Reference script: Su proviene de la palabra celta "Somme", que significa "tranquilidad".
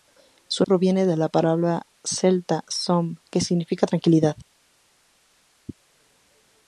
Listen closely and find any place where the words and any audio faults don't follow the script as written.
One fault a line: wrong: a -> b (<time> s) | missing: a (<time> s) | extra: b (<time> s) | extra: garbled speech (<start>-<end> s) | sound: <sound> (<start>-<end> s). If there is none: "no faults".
no faults